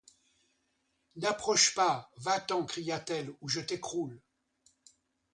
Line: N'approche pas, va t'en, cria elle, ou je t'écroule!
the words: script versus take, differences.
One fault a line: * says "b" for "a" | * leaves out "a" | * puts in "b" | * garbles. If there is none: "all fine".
* puts in "t"